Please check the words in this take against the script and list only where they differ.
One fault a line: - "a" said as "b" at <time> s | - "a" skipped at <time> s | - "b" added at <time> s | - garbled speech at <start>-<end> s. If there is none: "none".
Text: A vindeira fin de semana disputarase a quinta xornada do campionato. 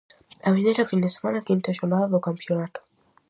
- "disputarase a" skipped at 1.4 s